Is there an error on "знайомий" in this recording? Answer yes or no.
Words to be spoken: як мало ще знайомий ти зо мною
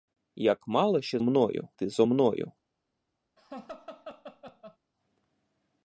yes